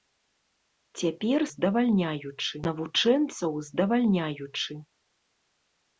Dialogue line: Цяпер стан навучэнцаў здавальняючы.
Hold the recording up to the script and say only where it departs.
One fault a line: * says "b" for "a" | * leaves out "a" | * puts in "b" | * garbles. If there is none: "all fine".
* says "здавальняючы" for "стан"